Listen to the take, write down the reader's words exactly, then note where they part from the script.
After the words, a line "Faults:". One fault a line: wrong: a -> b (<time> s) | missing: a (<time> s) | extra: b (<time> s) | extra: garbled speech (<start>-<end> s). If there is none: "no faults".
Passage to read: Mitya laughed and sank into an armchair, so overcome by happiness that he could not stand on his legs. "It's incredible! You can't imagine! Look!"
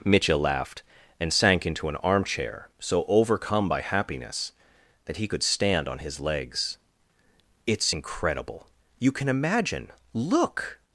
Mitya laughed and sank into an armchair, so overcome by happiness that he could stand on his legs. "It's incredible! You can imagine! Look!"
Faults:
missing: not (5.4 s)
wrong: can't -> can (9.1 s)